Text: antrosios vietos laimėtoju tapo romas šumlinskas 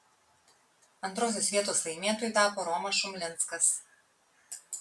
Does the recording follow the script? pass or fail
pass